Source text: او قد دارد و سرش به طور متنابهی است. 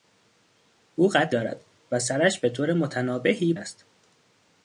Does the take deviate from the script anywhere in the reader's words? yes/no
no